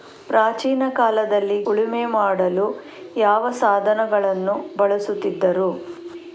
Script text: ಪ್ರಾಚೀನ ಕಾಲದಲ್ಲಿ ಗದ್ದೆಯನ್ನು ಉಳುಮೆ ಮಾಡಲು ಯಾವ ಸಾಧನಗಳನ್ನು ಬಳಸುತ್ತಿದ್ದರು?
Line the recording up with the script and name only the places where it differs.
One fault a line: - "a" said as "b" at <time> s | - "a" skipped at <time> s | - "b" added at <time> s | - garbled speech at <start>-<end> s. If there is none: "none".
- "ಗದ್ದೆಯನ್ನು" skipped at 1.6 s